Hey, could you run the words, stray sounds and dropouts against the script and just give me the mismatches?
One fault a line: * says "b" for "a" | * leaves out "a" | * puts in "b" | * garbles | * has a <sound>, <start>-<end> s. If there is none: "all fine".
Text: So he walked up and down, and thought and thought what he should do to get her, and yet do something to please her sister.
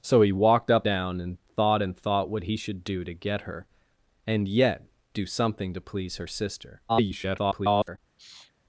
* leaves out "and"
* garbles
* has a sniff, 8.2-8.5 s